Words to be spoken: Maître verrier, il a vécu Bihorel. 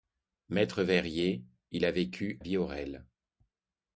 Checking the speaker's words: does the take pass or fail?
pass